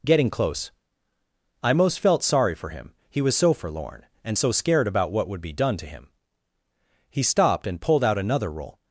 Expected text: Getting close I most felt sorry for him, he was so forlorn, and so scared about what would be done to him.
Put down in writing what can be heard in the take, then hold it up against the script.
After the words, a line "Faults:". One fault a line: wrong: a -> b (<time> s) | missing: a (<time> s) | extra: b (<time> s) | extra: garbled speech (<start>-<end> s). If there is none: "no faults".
Getting close I most felt sorry for him, he was so forlorn, and so scared about what would be done to him. He stopped and pulled out another roll
Faults:
extra: He stopped and pulled out another roll (7.1 s)